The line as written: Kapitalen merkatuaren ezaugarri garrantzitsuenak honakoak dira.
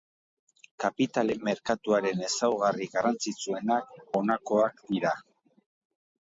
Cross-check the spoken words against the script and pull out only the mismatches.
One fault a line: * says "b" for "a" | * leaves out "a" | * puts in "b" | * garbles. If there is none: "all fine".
all fine